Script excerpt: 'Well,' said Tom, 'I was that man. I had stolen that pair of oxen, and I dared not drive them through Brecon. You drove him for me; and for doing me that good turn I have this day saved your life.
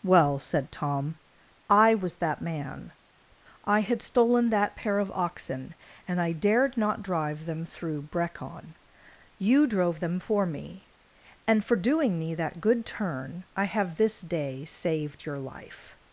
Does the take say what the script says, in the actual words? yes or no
no